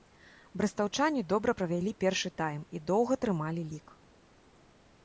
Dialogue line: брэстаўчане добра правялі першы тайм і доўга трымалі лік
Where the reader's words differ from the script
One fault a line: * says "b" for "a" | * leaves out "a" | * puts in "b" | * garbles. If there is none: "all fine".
all fine